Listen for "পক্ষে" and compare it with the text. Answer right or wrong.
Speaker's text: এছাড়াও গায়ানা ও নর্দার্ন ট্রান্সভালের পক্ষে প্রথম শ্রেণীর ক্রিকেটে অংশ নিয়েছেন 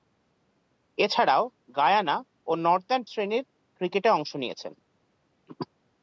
wrong